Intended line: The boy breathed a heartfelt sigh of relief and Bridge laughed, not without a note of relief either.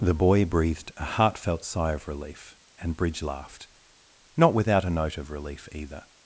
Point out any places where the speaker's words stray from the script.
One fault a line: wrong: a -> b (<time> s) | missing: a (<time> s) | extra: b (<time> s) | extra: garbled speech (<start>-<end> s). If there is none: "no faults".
no faults